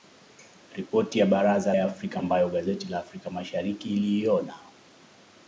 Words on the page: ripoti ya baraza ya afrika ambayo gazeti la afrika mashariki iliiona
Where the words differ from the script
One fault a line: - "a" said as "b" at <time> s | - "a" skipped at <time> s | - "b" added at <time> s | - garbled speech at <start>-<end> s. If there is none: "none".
none